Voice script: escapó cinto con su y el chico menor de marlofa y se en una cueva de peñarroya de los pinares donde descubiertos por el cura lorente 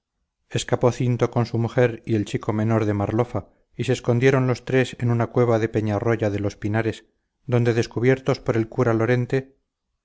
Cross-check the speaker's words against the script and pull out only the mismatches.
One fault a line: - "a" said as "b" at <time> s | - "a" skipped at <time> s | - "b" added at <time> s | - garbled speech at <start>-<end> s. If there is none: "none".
- "mujer" added at 1.6 s
- "escondieron los tres" added at 3.9 s